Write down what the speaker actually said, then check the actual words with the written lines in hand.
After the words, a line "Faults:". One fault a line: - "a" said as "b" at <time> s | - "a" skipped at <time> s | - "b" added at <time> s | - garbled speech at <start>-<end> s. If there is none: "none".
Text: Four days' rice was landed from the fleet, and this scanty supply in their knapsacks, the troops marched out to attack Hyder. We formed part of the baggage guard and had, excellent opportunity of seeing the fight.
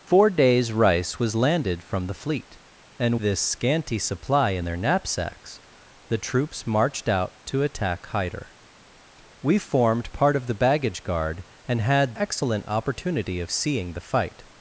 Four days' rice was landed from the fleet, and this scanty supply in their knapsacks, the troops marched out to attack Hyder. We formed part of the baggage guard and had, excellent opportunity of seeing the fight.
Faults:
none